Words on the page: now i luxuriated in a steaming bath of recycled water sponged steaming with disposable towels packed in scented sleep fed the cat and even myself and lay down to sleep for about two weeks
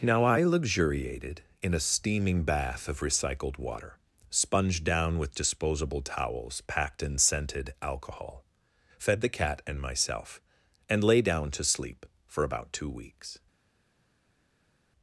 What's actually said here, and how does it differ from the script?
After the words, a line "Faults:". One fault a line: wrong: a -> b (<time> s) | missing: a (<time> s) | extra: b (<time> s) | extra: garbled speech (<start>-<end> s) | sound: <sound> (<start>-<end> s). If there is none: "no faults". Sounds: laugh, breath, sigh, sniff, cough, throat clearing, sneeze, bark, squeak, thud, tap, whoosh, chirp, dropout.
now i luxuriated in a steaming bath of recycled water sponged down with disposable towels packed in scented alcohol fed the cat and myself and lay down to sleep for about two weeks
Faults:
wrong: steaming -> down (4.8 s)
wrong: sleep -> alcohol (7.8 s)
missing: even (9.8 s)